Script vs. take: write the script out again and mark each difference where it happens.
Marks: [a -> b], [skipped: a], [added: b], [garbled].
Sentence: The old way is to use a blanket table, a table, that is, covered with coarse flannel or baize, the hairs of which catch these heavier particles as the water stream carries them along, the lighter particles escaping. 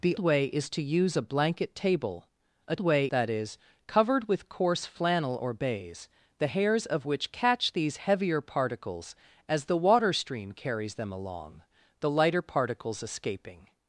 The [skipped: old] way is to use a blanket table, a [table, -> way] that is, covered with coarse flannel or baize, the hairs of which catch these heavier particles as the water stream carries them along, the lighter particles escaping.